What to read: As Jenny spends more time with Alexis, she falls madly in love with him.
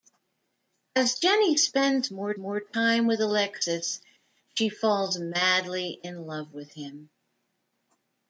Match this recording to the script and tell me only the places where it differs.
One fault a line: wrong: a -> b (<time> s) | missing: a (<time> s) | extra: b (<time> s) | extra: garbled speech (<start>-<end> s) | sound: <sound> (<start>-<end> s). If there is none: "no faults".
extra: more (2.4 s)